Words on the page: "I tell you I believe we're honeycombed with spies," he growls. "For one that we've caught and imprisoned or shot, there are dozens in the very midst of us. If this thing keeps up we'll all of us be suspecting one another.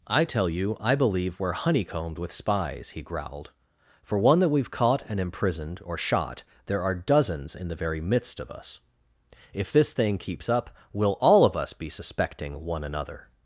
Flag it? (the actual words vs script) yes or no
yes